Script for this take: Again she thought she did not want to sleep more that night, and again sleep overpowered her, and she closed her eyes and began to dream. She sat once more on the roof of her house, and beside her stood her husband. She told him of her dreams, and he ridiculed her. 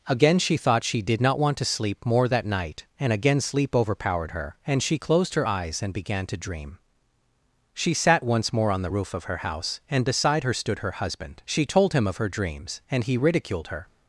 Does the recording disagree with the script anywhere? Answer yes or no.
no